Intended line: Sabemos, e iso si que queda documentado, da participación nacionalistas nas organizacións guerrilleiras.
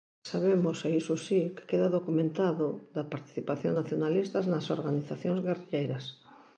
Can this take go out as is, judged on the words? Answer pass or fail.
pass